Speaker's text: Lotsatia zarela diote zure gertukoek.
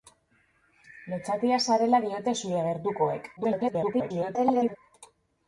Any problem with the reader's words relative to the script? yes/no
yes